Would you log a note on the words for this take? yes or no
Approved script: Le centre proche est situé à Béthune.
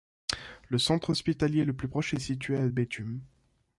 yes